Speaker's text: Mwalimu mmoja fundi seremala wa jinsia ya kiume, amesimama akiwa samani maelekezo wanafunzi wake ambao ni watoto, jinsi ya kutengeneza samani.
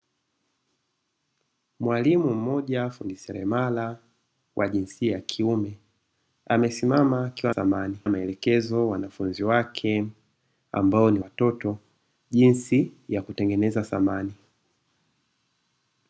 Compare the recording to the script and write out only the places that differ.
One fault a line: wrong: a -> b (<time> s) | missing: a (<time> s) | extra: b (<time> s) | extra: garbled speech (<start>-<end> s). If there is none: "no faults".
no faults